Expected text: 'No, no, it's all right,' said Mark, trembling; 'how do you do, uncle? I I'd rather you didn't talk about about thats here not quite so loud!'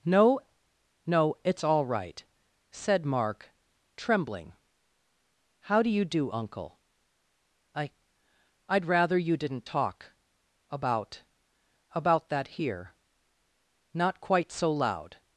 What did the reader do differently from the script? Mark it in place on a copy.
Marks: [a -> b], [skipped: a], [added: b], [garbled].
'No, no, it's all right,' said Mark, trembling; 'how do you do, uncle? I I'd rather you didn't talk about about [thats -> that] here not quite so loud!'